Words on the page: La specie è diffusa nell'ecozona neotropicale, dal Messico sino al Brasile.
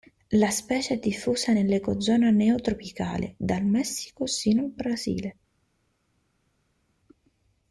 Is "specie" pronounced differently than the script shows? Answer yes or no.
no